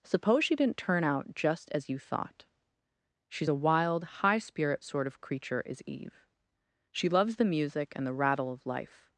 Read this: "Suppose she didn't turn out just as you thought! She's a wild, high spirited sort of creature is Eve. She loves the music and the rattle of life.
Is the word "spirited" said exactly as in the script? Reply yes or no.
no